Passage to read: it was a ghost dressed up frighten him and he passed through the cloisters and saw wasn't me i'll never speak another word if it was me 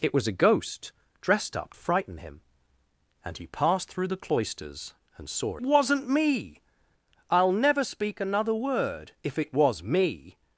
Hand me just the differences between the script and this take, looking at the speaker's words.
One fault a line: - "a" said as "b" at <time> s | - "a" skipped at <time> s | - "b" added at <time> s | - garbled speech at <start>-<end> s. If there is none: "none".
none